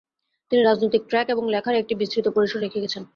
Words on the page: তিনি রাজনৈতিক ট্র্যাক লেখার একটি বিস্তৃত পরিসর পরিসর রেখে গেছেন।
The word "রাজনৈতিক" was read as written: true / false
true